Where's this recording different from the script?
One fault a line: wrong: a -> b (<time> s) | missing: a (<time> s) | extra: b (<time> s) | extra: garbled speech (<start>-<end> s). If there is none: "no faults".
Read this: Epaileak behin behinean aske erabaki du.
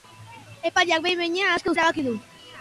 no faults